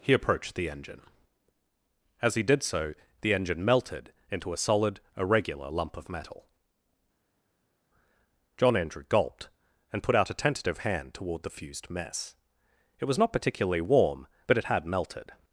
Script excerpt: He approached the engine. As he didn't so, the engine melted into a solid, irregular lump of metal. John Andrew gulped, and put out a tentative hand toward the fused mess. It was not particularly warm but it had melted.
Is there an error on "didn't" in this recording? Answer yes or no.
yes